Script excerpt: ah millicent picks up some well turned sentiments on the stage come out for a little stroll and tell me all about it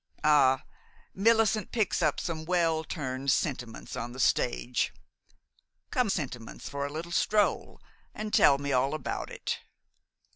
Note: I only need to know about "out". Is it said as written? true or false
false